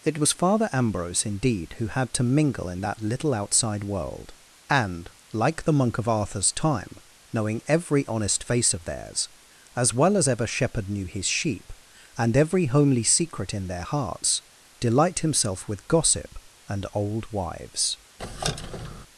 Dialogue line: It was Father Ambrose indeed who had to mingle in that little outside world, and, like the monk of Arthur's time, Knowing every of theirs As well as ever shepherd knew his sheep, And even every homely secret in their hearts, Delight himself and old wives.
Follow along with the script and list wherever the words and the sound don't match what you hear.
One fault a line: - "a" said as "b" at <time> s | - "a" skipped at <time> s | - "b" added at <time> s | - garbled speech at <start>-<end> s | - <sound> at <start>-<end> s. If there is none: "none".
- "honest face" added at 8.1 s
- "even" skipped at 12.3 s
- "with gossip" added at 15.7 s
- squeak at 18.2-19.1 s